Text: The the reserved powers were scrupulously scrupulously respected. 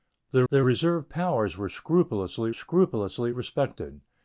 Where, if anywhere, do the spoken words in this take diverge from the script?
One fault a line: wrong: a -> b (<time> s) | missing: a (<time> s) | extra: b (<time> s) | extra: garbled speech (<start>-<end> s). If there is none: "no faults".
no faults